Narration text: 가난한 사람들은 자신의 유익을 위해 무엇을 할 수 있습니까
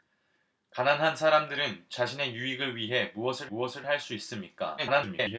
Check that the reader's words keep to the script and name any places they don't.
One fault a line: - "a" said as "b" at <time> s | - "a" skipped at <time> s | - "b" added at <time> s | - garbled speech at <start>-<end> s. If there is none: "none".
- "무엇을" added at 3.5 s
- garbled speech at 4.8-5.4 s